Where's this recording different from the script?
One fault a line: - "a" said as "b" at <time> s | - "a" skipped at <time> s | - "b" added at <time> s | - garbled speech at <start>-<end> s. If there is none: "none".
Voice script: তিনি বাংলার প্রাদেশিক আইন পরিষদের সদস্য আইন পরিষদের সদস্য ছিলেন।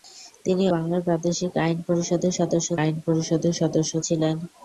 none